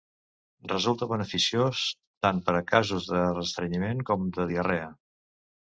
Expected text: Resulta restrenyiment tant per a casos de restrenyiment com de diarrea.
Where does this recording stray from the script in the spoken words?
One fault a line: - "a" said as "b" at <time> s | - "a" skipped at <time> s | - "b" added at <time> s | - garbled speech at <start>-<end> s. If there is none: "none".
- "restrenyiment" said as "beneficiós" at 1.1 s